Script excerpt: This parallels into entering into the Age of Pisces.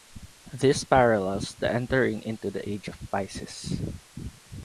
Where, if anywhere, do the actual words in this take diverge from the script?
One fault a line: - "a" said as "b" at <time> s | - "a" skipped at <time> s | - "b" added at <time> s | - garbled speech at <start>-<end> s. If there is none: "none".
- "into" said as "the" at 1.5 s